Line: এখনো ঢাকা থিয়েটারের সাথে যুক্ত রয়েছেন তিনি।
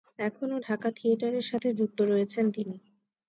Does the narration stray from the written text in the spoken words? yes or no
no